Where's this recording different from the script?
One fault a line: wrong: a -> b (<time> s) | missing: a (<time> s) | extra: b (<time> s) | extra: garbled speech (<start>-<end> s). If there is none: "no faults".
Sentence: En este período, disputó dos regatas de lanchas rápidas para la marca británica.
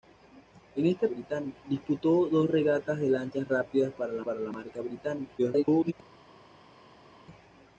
wrong: período -> británica (1.1 s)
extra: para la (4.2 s)
extra: garbled speech (5.4-5.9 s)